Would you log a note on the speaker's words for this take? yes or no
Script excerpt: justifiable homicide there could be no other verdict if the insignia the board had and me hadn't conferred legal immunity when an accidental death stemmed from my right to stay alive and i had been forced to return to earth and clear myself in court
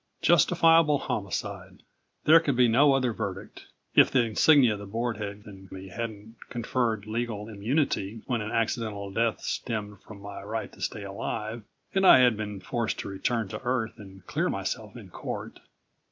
no